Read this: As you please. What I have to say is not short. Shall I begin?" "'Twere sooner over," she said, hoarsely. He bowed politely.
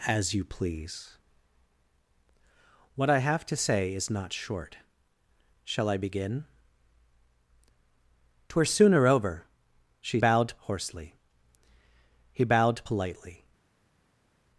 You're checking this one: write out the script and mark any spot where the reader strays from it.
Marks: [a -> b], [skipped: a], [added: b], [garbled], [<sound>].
As you please. What I have to say is not short. Shall I begin?" "'Twere sooner over," she [said, -> bowed] hoarsely. He bowed politely.